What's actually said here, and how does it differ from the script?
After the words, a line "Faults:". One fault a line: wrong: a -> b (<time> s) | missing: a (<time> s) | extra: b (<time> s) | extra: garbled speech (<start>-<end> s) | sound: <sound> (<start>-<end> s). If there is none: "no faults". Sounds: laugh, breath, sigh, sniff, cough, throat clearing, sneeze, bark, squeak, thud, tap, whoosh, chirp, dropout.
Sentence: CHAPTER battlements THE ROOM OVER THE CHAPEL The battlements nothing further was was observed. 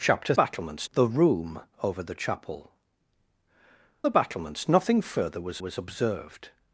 CHAPTER battlements THE ROOM OVER THE CHAPEL The battlements nothing further was was observed.
Faults:
no faults